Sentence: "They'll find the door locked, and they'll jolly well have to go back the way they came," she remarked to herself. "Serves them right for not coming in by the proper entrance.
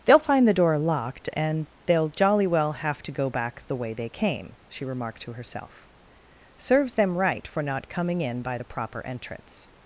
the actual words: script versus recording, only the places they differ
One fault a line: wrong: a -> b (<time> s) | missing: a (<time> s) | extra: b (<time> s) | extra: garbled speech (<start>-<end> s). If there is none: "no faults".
no faults